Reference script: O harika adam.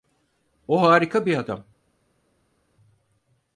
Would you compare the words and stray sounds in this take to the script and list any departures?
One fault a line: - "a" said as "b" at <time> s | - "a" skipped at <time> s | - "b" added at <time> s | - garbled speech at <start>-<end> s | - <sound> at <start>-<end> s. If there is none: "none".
- "bir" added at 1.2 s